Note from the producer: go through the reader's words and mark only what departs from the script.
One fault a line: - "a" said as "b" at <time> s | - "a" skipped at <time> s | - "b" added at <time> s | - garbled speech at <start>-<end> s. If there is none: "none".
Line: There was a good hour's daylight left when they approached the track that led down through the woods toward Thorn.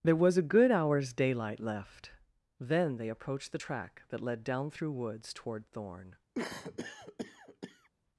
- "when" said as "then" at 2.6 s
- "the" skipped at 4.9 s